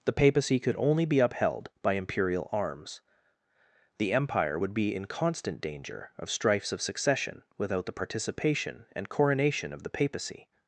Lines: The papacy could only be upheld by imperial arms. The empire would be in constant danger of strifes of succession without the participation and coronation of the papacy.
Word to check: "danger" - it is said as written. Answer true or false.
true